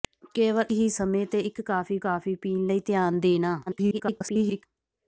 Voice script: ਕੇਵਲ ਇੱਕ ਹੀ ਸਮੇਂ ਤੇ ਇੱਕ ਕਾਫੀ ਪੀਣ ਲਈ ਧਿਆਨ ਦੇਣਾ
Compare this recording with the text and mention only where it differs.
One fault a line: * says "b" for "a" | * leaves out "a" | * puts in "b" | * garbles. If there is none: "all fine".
* leaves out "ਇੱਕ"
* puts in "ਕਾਫੀ"
* garbles